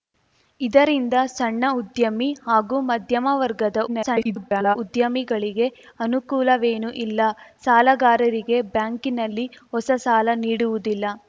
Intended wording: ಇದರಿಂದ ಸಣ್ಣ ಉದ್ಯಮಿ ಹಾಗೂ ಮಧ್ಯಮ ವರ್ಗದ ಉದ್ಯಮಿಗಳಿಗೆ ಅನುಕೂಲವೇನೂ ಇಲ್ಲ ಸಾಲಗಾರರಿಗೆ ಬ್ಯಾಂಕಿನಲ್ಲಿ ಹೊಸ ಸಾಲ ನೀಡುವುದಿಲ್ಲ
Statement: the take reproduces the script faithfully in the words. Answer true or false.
false